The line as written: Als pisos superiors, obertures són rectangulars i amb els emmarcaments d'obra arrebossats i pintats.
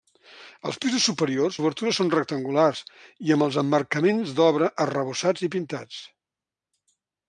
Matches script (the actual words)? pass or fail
pass